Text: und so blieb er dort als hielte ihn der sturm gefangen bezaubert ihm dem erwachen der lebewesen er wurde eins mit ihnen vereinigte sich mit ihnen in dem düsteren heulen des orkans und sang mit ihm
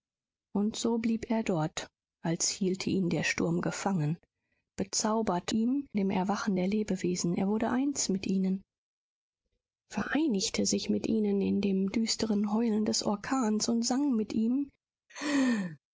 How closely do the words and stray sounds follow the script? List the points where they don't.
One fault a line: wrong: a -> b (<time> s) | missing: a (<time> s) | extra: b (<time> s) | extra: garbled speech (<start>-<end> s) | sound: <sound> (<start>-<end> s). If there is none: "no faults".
sound: laugh (15.1-15.8 s)